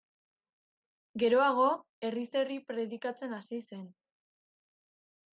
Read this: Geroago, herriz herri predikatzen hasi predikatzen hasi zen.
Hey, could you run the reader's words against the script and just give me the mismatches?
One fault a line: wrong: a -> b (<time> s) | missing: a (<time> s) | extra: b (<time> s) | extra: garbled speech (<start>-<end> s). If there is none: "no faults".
missing: predikatzen hasi (3.6 s)